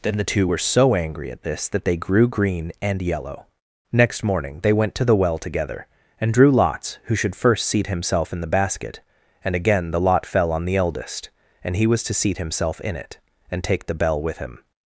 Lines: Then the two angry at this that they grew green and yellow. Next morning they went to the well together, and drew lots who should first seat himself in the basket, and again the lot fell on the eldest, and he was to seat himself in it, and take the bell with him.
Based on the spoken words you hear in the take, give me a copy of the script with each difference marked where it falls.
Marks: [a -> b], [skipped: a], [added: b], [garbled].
Then the two [added: were so] angry at this that they grew green and yellow. Next morning they went to the well together, and drew lots who should first seat himself in the basket, and again the lot fell on the eldest, and he was to seat himself in it, and take the bell with him.